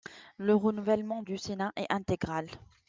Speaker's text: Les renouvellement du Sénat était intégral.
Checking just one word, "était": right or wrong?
wrong